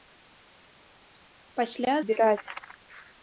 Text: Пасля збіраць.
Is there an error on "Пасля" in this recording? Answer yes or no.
no